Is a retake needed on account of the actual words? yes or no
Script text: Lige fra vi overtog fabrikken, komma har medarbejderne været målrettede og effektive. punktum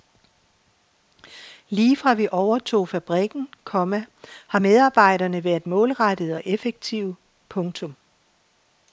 no